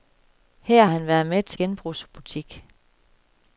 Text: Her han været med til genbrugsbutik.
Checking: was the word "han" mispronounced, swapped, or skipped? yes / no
no